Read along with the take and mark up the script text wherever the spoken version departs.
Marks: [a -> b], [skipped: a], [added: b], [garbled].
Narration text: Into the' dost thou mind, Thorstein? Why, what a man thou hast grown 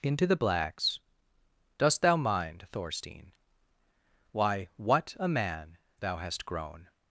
Into the' [added: blacks] dost thou mind, Thorstein? Why, what a man thou hast grown